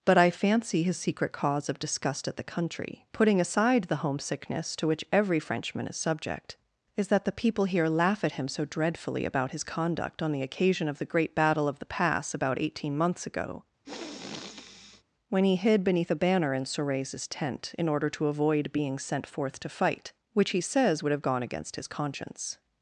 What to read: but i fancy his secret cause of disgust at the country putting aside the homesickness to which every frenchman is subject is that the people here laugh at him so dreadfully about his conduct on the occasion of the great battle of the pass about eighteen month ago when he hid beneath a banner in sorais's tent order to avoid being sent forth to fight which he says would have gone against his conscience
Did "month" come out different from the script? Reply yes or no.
yes